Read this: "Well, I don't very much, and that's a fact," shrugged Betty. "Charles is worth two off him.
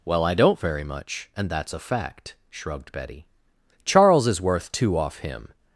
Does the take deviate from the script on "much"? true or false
false